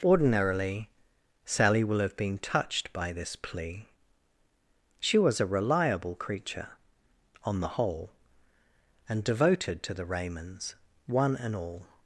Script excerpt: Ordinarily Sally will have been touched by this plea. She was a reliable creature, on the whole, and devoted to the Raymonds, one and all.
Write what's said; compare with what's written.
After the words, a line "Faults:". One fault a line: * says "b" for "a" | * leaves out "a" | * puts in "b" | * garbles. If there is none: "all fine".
Ordinarily Sally will have been touched by this plea. She was a reliable creature, on the whole, and devoted to the Raymonds, one and all.
Faults:
all fine